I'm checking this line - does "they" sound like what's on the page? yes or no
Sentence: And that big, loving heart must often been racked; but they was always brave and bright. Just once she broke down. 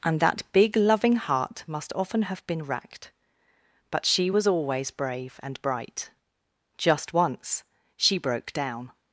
no